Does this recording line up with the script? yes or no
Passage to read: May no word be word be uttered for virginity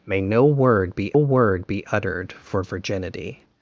yes